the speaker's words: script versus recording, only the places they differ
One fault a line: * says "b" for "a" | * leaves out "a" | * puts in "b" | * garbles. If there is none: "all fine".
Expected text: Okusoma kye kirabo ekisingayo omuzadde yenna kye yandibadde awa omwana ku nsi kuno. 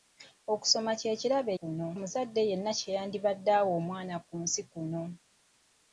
* says "kuno" for "ekisingayo"